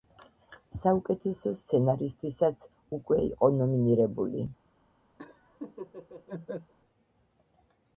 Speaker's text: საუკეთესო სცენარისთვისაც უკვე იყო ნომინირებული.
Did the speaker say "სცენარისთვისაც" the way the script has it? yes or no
yes